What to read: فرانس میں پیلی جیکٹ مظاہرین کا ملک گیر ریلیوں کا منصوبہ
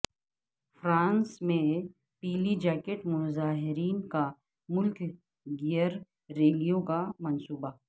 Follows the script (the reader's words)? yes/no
yes